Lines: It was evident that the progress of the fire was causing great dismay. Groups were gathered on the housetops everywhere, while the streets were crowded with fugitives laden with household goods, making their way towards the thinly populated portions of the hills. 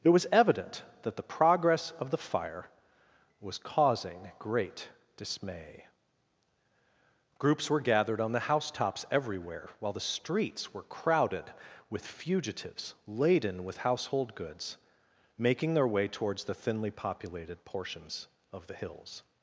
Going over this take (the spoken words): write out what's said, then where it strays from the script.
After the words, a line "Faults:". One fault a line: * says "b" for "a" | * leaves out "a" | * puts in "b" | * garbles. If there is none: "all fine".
It was evident that the progress of the fire was causing great dismay. Groups were gathered on the housetops everywhere, while the streets were crowded with fugitives laden with household goods, making their way towards the thinly populated portions of the hills.
Faults:
all fine